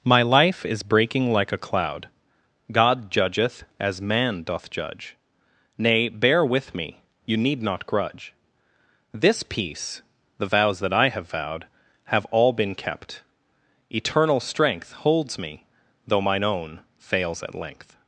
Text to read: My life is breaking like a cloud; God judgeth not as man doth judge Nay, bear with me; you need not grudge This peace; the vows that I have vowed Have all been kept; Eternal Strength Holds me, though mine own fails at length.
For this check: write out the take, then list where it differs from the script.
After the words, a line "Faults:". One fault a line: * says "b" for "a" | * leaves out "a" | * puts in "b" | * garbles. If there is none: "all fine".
My life is breaking like a cloud; God judgeth as man doth judge Nay, bear with me; you need not grudge This peace; the vows that I have vowed Have all been kept; Eternal Strength Holds me, though mine own fails at length.
Faults:
* leaves out "not"